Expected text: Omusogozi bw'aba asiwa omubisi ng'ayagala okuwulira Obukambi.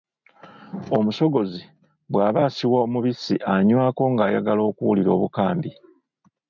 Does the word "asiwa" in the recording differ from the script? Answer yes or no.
no